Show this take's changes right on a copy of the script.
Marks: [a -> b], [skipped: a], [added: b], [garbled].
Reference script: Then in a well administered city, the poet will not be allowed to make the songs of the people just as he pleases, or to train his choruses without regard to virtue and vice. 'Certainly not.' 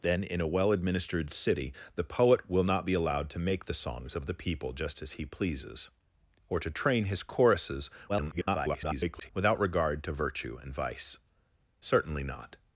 Then in a well administered city, the poet will not be allowed to make the songs of the people just as he pleases, or to train his choruses [garbled] without regard to virtue and vice. 'Certainly not.'